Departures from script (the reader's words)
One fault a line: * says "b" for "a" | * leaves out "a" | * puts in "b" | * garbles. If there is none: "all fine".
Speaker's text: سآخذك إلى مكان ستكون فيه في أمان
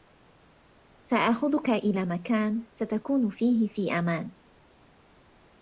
all fine